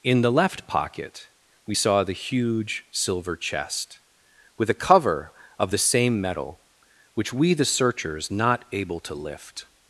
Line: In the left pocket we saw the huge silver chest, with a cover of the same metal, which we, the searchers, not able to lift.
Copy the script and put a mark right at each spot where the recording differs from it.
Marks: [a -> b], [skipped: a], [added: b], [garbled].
In the left pocket we saw the huge silver chest, with a cover of the same metal, which we, the searchers, not able to lift.